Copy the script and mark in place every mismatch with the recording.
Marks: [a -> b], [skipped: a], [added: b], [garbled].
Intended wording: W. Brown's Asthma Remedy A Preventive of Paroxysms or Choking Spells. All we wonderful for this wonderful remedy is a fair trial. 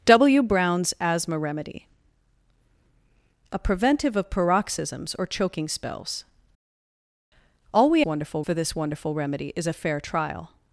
W. Brown's Asthma Remedy A Preventive of Paroxysms or Choking Spells. All we wonderful for this wonderful remedy is a fair trial.